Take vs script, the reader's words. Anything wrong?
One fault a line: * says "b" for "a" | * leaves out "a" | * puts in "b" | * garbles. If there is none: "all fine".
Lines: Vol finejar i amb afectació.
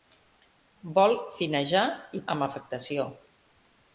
all fine